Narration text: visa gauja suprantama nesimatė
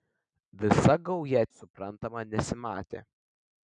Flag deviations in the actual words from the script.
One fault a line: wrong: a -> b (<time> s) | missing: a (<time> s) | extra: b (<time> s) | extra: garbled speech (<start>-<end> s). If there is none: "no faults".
no faults